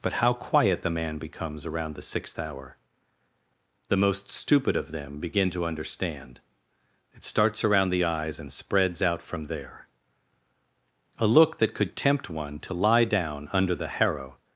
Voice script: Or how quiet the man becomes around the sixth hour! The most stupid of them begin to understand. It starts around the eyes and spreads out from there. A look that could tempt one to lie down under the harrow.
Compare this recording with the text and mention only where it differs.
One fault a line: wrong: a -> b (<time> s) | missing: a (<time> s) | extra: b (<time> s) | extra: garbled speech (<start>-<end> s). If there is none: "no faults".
wrong: Or -> But (0.0 s)